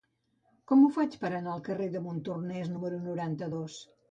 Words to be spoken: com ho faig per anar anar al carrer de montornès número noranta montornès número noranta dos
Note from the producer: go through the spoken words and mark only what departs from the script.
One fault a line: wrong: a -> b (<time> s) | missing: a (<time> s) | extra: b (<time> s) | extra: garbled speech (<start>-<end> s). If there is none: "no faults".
missing: anar (1.5 s)
missing: montornès número noranta (3.5 s)